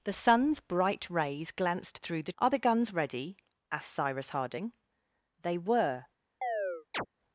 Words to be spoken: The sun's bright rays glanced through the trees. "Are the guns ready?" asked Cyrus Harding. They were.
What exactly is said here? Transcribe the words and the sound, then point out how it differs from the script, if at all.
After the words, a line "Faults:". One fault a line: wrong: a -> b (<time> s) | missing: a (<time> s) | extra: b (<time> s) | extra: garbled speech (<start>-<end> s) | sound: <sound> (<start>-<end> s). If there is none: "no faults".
The sun's bright rays glanced through the. "Are the guns ready?" asked Cyrus Harding. They were.
Faults:
missing: trees (2.3 s)
sound: chirp (6.4-7.1 s)